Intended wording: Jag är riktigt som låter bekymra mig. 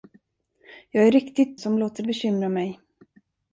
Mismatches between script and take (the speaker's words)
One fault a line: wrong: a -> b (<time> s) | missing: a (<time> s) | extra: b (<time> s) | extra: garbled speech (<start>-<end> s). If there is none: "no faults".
no faults